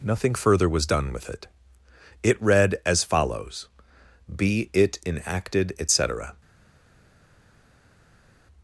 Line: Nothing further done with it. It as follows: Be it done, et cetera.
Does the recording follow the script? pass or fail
fail